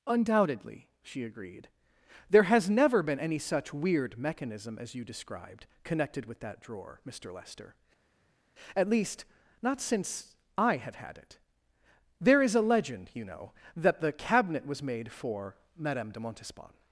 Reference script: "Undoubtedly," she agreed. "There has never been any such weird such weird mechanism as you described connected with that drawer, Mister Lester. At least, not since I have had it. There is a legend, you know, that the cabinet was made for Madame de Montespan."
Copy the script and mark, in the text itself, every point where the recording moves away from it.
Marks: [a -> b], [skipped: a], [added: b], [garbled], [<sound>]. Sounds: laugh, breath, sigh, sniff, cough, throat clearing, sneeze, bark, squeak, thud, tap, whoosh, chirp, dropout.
"Undoubtedly," she agreed. "There has never been any such weird [skipped: such weird] mechanism as you described connected with that drawer, Mister Lester. At least, not since I have had it. There is a legend, you know, that the cabinet was made for Madame de Montespan."